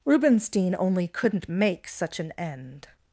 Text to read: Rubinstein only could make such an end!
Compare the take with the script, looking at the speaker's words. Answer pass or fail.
fail